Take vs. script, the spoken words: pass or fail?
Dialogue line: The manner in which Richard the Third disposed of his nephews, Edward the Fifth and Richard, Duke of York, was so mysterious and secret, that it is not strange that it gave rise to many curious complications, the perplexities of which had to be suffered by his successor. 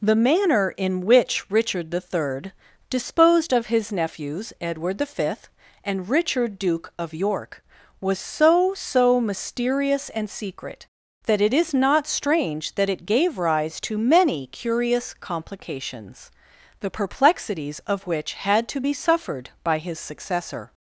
fail